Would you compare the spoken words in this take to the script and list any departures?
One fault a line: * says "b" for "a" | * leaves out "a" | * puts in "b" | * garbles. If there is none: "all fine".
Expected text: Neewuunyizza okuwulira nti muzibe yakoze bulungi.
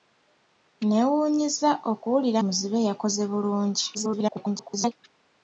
* leaves out "nti"
* garbles